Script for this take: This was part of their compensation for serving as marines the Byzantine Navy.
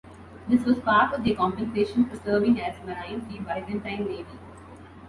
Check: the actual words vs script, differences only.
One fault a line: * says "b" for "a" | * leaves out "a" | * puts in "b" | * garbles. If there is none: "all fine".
all fine